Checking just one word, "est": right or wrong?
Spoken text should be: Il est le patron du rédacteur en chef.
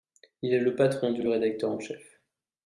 right